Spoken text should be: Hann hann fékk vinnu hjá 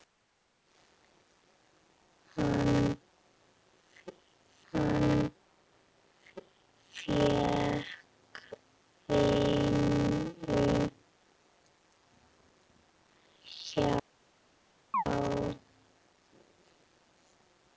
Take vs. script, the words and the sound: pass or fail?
fail